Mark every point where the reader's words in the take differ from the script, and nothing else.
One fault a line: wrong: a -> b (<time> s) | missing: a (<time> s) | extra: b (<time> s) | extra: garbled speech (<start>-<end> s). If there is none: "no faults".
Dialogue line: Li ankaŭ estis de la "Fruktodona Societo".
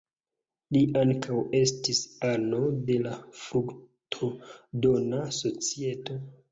extra: ano (2.3 s)